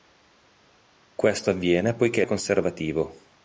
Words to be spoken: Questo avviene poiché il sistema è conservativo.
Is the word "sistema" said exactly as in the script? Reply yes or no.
no